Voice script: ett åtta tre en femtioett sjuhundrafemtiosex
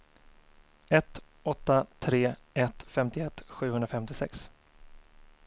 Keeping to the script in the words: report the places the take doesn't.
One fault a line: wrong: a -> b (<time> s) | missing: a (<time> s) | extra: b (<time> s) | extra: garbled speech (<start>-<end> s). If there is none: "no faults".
wrong: en -> ett (2.5 s)